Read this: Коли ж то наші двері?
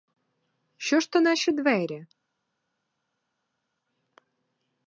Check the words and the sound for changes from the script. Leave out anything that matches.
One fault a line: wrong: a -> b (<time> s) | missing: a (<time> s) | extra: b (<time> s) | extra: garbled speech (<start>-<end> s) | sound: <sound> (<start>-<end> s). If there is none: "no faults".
wrong: Коли -> Що (0.8 s)